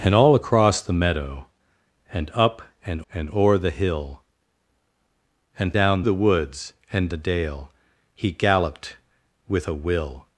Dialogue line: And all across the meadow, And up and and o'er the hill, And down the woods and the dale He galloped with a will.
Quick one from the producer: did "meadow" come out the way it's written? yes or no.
yes